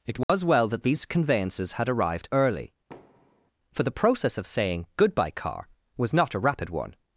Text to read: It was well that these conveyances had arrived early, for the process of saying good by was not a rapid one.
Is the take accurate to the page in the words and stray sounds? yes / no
no